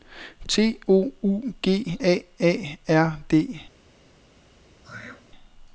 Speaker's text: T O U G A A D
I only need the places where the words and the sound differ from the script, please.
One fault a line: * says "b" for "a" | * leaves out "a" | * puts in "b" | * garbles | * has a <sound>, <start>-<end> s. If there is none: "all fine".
* puts in "R"
* has a throat clearing, 4.8-5.3 s